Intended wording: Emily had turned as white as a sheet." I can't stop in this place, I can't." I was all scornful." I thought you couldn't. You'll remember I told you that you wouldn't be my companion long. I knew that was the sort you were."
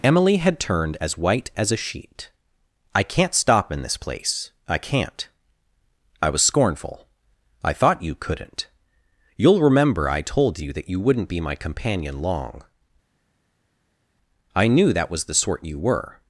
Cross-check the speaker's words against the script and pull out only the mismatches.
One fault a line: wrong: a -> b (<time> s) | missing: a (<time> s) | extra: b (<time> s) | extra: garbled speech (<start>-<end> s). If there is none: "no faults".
missing: all (6.4 s)